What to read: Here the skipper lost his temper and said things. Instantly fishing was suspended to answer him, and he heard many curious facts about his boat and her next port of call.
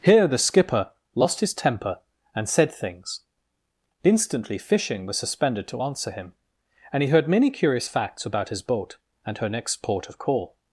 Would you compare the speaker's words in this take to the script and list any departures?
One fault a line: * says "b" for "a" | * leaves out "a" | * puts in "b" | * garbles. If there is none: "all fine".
all fine